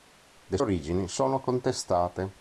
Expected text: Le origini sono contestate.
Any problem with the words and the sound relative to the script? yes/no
no